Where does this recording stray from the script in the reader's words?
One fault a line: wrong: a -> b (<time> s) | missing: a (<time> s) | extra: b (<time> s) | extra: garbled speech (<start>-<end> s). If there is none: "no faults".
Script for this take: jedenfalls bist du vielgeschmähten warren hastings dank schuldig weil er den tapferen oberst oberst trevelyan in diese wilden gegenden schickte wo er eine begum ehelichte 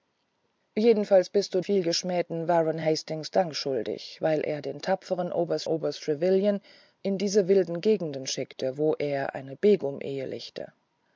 no faults